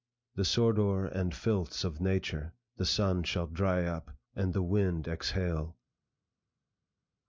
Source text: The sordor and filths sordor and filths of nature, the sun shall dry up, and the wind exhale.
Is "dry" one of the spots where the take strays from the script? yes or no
no